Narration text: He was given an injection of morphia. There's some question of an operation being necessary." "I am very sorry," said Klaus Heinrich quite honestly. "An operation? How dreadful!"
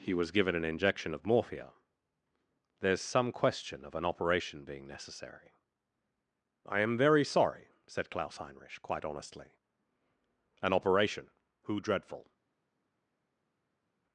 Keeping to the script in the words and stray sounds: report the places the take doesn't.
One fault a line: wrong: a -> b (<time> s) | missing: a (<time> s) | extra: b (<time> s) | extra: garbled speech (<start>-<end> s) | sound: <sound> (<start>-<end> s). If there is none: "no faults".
wrong: How -> Who (11.7 s)